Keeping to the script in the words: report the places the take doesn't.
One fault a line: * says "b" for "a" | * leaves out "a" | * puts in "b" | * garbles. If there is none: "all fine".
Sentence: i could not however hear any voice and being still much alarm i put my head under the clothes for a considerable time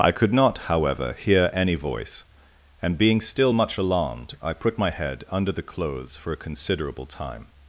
* says "alarmed" for "alarm"